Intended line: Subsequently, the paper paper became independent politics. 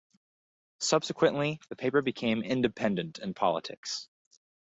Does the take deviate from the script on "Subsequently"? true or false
false